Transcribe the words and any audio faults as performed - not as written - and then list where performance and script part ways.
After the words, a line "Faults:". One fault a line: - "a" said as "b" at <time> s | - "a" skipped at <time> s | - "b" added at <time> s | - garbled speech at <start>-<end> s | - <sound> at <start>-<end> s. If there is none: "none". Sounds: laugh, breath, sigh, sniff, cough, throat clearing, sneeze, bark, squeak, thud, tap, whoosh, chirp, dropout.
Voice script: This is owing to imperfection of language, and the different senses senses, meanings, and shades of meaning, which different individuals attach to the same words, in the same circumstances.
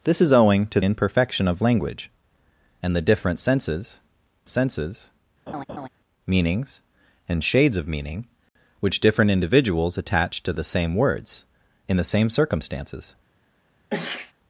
This is owing to imperfection of language, and the different senses senses, meanings, and shades of meaning, which different individuals attach to the same words, in the same circumstances.
Faults:
- laugh at 5.5-5.9 s
- sneeze at 13.9-14.3 s